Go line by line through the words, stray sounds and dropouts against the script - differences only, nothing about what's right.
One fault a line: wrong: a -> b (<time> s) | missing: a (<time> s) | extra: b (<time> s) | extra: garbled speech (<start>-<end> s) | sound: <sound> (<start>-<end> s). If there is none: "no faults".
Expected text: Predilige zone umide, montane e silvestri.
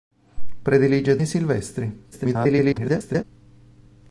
missing: zone umide montane (1.2 s)
extra: garbled speech (2.1-3.2 s)